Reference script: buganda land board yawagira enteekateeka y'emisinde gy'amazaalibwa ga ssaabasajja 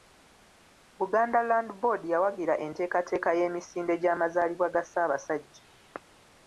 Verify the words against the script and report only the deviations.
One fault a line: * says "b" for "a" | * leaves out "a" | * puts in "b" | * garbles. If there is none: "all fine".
all fine